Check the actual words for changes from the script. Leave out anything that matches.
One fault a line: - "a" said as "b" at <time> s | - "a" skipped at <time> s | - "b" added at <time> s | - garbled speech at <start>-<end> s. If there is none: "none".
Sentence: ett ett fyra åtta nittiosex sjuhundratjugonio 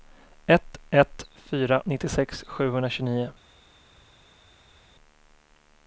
- "åtta" skipped at 1.8 s